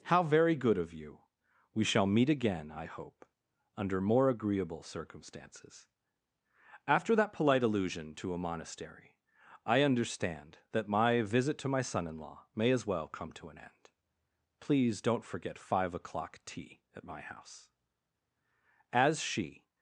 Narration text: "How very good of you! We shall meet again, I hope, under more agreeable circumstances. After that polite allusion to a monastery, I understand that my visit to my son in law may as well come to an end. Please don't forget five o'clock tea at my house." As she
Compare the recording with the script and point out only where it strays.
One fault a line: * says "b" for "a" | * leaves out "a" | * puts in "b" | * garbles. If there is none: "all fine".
all fine